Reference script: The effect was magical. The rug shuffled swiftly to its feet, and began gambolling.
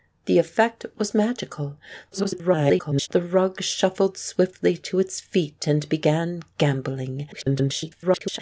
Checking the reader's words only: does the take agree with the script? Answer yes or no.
no